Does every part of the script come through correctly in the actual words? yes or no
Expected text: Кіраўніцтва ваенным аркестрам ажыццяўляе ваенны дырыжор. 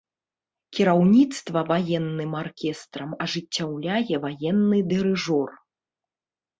yes